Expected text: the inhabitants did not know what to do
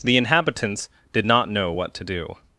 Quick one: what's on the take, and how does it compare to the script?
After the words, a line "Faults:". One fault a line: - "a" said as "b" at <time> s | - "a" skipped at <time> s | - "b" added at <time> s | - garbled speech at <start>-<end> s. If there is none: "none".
the inhabitants did not know what to do
Faults:
none